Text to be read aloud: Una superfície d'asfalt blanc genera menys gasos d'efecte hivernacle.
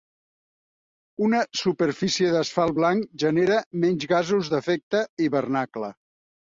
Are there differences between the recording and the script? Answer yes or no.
no